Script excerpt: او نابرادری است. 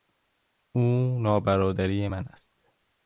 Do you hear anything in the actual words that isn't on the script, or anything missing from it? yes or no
yes